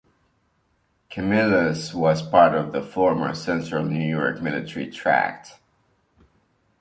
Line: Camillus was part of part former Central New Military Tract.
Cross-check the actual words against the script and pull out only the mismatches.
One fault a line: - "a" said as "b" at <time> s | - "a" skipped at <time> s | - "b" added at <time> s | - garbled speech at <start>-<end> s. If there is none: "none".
- "part" said as "the" at 2.7 s
- "York" added at 4.0 s